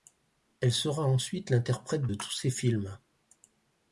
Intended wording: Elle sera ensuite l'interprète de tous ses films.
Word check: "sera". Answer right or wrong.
right